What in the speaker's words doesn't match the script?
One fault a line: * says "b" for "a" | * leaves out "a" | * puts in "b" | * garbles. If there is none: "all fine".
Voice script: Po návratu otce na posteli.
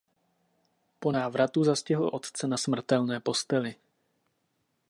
* puts in "zastihl"
* puts in "smrtelné"